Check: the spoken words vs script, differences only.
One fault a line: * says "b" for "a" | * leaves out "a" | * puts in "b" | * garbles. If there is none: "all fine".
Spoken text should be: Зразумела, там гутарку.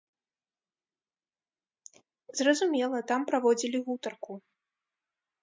* puts in "праводзілі"